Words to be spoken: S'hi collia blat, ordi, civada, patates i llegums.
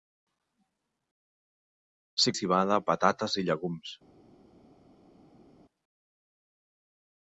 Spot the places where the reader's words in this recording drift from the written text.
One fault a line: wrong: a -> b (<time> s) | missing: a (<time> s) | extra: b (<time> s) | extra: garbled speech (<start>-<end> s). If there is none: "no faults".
missing: collia blat ordi (2.3 s)